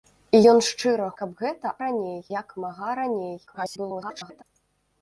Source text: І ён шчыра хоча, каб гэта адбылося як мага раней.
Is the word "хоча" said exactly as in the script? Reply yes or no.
no